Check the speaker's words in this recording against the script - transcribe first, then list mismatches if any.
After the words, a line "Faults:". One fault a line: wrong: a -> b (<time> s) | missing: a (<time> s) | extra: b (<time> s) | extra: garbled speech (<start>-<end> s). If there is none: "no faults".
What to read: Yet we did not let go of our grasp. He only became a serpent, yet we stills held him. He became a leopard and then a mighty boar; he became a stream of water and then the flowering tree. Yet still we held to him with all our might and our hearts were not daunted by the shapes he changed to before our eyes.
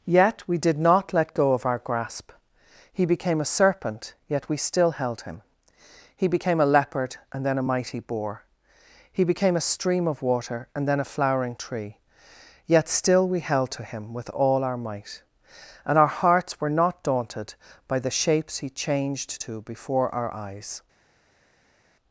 Yet we did not let go of our grasp. He became a serpent, yet we still held him. He became a leopard and then a mighty boar; he became a stream of water and then a flowering tree. Yet still we held to him with all our might and our hearts were not daunted by the shapes he changed to before our eyes.
Faults:
missing: only (3.0 s)
wrong: stills -> still (4.6 s)
wrong: the -> a (11.0 s)